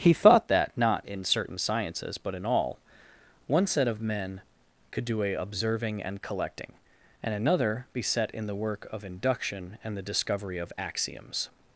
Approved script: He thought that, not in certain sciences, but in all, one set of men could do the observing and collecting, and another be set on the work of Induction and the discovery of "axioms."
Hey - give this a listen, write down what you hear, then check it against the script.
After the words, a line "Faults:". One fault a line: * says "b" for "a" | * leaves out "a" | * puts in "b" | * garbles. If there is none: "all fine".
He thought that, not in certain sciences, but in all, one set of men could do a observing and collecting, and another be set in the work of Induction and the discovery of "axioms."
Faults:
* says "a" for "the"
* says "in" for "on"